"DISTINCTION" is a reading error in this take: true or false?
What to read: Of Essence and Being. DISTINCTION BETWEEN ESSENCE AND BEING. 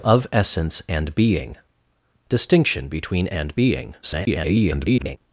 false